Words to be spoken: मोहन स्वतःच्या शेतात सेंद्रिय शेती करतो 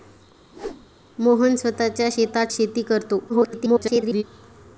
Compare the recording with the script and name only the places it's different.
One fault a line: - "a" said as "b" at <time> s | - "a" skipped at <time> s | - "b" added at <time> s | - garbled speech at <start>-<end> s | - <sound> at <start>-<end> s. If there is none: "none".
- whoosh at 0.5-0.9 s
- "सेंद्रिय" skipped at 2.5 s
- garbled speech at 3.3-4.2 s